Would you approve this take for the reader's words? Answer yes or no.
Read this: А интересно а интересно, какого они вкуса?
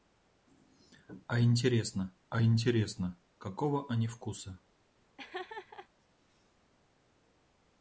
yes